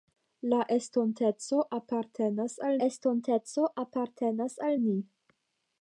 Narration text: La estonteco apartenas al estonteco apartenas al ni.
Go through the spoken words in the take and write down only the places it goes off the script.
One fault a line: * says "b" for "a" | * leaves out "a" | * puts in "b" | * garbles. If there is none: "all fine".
all fine